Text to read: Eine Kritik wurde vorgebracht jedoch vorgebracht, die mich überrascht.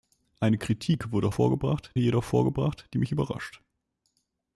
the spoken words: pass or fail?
pass